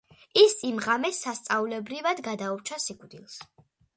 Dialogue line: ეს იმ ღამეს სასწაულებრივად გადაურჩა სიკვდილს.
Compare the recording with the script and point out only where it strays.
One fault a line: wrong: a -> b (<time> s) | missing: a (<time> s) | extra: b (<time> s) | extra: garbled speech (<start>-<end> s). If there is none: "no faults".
wrong: ეს -> ის (0.4 s)